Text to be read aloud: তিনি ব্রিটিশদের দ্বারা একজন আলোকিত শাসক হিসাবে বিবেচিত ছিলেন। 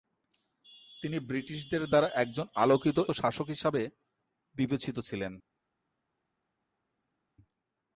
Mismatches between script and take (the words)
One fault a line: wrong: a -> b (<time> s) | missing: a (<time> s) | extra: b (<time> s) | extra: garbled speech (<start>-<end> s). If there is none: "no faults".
no faults